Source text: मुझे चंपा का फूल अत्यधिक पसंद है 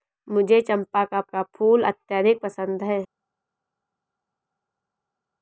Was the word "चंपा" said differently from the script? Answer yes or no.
no